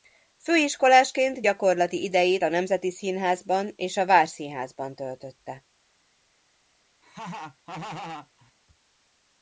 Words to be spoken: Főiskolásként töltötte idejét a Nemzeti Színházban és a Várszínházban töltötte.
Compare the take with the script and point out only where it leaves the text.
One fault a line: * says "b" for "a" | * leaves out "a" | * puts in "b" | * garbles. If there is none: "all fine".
* says "gyakorlati" for "töltötte"